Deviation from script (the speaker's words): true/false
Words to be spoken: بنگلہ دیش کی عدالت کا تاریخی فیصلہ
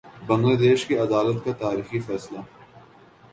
false